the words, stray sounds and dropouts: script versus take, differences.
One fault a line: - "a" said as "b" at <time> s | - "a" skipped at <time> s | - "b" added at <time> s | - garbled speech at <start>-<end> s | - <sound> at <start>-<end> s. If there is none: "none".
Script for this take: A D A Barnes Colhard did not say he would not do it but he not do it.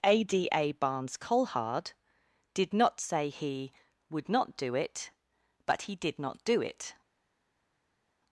- "did" added at 6.0 s